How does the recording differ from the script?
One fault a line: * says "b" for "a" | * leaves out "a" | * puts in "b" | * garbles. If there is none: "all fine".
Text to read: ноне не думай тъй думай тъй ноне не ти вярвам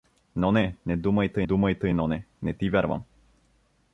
all fine